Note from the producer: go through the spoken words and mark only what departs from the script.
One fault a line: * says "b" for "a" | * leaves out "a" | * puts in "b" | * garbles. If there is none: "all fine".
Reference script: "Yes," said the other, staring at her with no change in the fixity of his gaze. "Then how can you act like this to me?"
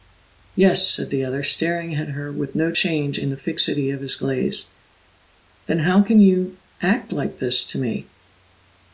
all fine